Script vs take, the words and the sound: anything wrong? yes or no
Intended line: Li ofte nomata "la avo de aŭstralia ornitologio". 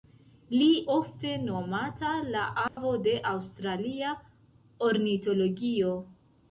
yes